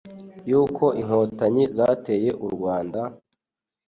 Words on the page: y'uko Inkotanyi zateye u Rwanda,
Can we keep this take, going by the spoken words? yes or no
yes